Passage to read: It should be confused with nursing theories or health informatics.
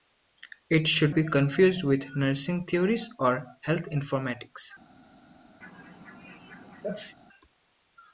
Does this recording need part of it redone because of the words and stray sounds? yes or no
yes